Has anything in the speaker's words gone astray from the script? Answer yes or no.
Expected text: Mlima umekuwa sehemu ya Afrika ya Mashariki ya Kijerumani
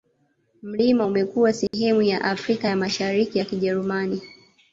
no